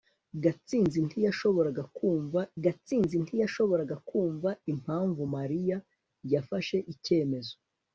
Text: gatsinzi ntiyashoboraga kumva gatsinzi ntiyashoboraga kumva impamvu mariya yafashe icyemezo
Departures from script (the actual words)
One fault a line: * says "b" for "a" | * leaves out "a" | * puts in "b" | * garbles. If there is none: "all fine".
all fine